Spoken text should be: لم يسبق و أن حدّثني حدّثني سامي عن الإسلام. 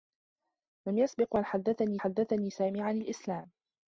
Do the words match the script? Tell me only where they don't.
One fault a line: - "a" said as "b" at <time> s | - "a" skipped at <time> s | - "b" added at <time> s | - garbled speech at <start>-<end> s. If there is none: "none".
none